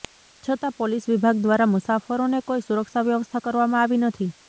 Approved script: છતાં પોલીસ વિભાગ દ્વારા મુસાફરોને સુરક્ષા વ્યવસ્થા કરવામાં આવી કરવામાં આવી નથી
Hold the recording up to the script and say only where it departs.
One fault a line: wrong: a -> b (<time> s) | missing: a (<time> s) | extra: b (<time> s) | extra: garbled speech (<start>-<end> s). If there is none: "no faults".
extra: કોઈ (2.5 s)
missing: કરવામાં આવી (4.0 s)